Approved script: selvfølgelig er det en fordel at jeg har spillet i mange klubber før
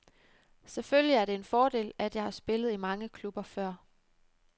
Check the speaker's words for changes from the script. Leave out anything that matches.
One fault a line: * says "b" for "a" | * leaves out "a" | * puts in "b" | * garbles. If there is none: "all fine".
all fine